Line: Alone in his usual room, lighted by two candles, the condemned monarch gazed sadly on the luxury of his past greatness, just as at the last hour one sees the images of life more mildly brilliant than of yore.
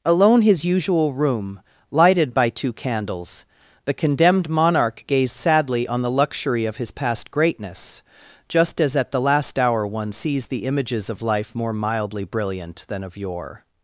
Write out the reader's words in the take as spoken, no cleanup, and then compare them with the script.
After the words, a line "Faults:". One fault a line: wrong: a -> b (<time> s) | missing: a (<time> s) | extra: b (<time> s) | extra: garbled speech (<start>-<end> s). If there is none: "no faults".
Alone his usual room, lighted by two candles, the condemned monarch gazed sadly on the luxury of his past greatness, just as at the last hour one sees the images of life more mildly brilliant than of yore.
Faults:
missing: in (0.4 s)